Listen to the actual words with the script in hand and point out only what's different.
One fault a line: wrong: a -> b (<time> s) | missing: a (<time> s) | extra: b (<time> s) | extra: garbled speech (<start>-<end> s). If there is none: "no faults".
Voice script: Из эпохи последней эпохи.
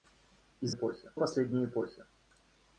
no faults